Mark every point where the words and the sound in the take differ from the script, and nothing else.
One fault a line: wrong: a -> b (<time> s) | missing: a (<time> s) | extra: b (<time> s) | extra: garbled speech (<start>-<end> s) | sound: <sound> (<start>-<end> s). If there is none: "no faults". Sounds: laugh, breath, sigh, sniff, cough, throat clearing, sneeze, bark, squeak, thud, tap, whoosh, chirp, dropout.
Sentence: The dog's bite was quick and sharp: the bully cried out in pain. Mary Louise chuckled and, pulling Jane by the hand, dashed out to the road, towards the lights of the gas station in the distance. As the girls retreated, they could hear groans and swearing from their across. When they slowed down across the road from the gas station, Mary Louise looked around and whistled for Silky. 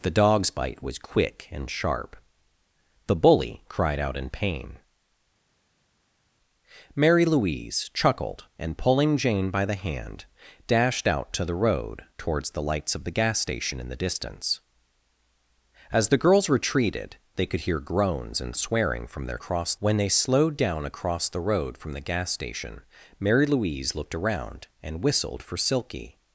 no faults